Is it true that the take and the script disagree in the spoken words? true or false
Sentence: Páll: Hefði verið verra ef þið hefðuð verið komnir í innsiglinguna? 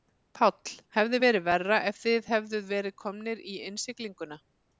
false